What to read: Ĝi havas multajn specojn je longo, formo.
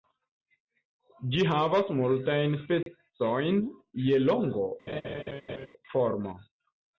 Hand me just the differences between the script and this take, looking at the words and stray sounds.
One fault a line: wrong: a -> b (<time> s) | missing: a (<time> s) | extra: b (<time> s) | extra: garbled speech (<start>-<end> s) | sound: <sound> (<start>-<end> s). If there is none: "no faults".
sound: dropout (2.8-2.9 s)
sound: laugh (4.9-5.7 s)